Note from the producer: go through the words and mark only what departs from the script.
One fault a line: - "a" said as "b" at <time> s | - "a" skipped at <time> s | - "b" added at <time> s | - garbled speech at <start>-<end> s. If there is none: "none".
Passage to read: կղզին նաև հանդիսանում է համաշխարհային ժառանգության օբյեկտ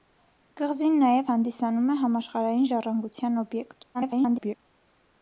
- garbled speech at 3.9-4.5 s